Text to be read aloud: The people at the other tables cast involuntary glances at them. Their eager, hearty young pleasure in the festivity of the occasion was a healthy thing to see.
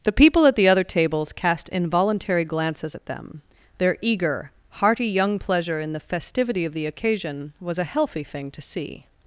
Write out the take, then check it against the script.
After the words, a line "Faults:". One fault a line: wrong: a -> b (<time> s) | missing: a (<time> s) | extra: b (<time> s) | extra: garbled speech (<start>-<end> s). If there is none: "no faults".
The people at the other tables cast involuntary glances at them. Their eager, hearty young pleasure in the festivity of the occasion was a healthy thing to see.
Faults:
no faults